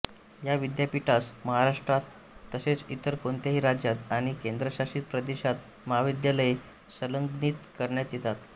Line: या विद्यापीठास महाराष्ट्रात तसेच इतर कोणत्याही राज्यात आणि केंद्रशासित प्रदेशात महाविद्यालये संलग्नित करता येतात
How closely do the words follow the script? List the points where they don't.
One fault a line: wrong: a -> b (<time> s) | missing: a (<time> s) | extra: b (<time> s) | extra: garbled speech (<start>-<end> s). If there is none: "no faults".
no faults